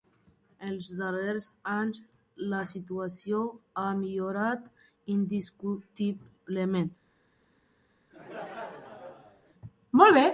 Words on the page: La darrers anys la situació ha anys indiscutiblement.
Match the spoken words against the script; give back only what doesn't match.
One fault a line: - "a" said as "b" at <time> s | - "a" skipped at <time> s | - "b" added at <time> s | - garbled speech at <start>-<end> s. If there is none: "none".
- "La" said as "Els" at 0.7 s
- "anys" said as "millorat" at 4.0 s